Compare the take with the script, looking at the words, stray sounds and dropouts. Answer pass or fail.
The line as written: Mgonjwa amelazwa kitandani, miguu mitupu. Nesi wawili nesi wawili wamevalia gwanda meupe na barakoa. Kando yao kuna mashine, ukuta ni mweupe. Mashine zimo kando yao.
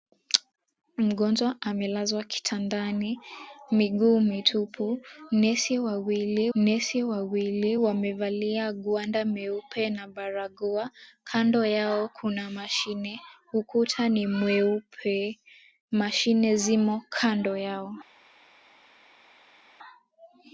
pass